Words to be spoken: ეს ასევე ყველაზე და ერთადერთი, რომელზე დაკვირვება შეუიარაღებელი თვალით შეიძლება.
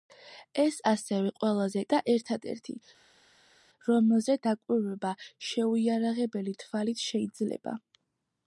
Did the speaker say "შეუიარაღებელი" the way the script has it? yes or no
yes